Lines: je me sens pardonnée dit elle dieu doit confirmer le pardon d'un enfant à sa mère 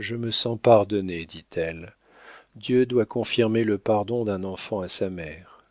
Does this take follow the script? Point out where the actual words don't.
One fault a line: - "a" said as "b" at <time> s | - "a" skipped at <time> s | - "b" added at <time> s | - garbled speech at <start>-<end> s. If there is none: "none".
none